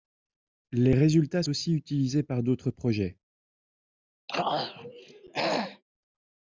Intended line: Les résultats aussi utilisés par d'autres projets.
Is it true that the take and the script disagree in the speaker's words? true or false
false